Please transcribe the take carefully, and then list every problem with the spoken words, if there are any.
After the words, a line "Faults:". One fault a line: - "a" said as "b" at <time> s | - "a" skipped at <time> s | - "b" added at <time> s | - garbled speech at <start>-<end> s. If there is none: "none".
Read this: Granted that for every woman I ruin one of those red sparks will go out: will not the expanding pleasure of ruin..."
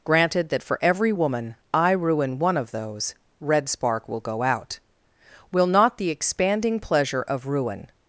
Granted that for every woman I ruin one of those red spark will go out: will not the expanding pleasure of ruin..."
Faults:
- "sparks" said as "spark" at 3.7 s